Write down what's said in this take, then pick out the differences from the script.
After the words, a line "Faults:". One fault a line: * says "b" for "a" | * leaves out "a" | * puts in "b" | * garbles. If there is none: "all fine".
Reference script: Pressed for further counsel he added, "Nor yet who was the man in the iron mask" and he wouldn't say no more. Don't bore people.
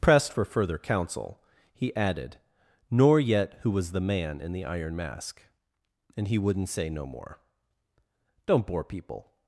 Pressed for further counsel he added, "Nor yet who was the man in the iron mask" and he wouldn't say no more. Don't bore people.
Faults:
all fine